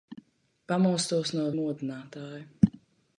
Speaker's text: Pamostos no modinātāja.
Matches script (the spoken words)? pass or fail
pass